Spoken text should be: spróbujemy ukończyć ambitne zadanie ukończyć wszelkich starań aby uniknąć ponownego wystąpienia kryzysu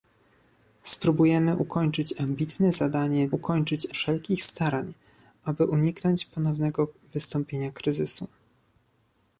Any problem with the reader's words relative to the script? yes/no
no